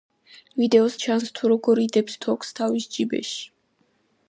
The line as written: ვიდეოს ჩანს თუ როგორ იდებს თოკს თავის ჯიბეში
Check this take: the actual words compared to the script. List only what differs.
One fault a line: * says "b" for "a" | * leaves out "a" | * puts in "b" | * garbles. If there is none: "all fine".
all fine